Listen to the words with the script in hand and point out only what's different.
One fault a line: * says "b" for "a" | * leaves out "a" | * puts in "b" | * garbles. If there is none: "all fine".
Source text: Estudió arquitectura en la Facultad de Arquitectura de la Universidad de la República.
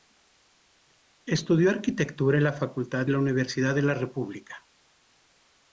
* leaves out "de Arquitectura de"